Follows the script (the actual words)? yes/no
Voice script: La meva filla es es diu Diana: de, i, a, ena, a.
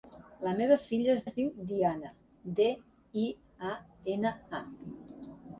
yes